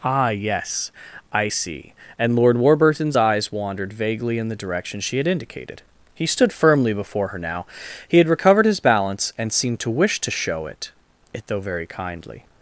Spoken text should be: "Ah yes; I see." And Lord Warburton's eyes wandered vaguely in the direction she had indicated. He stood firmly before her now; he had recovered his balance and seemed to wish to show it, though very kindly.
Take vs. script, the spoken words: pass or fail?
fail